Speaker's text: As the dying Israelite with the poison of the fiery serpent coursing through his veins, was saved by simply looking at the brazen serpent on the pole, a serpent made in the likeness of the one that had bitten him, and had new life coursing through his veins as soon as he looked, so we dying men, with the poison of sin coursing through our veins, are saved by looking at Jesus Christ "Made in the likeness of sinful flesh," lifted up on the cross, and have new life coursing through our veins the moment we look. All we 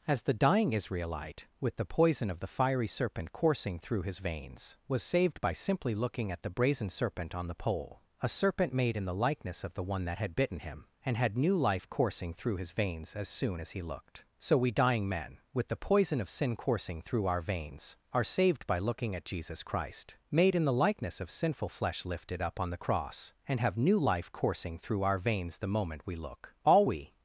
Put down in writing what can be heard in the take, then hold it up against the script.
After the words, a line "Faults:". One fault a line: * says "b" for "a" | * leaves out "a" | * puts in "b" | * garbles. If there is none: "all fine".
As the dying Israelite with the poison of the fiery serpent coursing through his veins, was saved by simply looking at the brazen serpent on the pole, a serpent made in the likeness of the one that had bitten him, and had new life coursing through his veins as soon as he looked, so we dying men, with the poison of sin coursing through our veins, are saved by looking at Jesus Christ "Made in the likeness of sinful flesh," lifted up on the cross, and have new life coursing through our veins the moment we look. All we
Faults:
all fine